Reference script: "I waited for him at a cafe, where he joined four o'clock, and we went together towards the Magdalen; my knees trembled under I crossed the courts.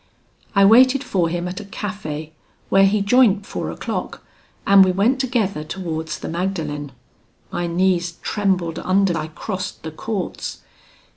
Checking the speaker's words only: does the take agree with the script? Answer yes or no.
yes